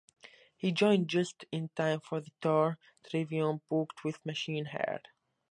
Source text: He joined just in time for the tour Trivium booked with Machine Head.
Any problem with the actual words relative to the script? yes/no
no